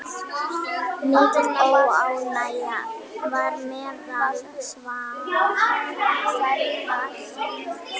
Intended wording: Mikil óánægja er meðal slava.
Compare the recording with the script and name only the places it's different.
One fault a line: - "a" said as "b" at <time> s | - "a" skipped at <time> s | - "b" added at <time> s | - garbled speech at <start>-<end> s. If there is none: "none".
- "er" said as "var" at 3.3 s